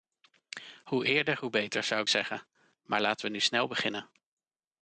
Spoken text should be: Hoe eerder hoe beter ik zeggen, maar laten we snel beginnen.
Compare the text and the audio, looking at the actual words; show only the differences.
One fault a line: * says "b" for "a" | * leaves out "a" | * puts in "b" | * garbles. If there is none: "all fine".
* puts in "zou"
* puts in "nu"